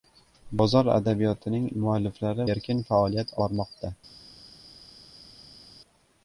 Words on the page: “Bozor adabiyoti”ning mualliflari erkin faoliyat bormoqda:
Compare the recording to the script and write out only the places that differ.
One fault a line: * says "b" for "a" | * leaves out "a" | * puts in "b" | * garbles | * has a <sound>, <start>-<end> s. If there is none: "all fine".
all fine